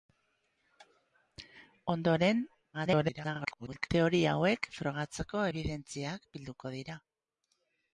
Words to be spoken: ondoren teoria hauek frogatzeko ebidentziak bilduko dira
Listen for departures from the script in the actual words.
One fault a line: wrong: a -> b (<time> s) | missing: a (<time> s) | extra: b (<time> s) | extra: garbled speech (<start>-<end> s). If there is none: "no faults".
extra: garbled speech (2.7-3.9 s)